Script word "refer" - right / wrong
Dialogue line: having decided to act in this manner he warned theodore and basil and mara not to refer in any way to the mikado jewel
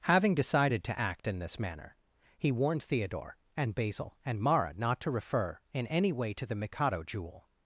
right